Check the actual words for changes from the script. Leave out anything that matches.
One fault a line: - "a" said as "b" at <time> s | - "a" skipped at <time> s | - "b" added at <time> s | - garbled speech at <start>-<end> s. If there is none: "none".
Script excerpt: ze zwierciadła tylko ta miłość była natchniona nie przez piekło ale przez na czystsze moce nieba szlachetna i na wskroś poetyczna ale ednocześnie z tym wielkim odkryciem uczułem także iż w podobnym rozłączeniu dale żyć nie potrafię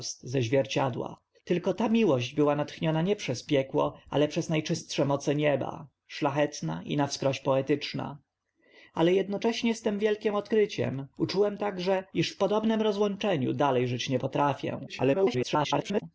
- garbled speech at 14.9-16.0 s